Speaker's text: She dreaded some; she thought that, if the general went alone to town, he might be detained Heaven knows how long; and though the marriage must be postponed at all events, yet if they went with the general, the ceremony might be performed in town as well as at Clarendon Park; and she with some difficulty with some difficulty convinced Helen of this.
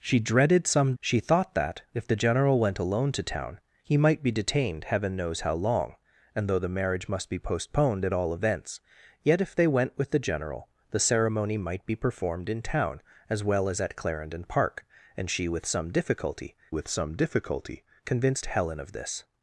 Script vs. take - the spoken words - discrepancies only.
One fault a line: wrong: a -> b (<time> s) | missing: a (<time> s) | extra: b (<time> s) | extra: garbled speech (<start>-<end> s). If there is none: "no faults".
no faults